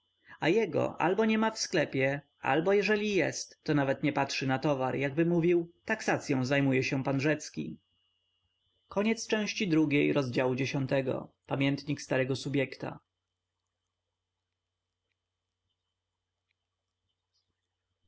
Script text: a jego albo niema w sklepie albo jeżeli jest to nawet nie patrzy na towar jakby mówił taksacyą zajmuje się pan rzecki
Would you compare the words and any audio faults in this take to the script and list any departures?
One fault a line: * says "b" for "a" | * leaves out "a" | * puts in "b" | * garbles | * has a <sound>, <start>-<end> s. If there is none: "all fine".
all fine